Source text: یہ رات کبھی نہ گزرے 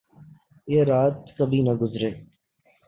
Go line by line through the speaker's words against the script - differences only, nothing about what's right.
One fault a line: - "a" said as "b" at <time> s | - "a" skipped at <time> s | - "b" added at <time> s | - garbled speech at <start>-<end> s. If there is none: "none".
none